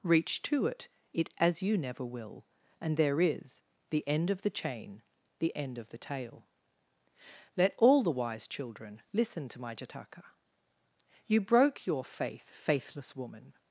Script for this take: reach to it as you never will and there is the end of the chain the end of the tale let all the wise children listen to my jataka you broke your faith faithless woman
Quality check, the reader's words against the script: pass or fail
fail